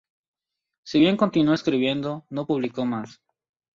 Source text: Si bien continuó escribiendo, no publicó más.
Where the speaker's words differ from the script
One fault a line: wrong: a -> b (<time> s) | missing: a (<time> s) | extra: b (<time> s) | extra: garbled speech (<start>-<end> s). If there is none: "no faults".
no faults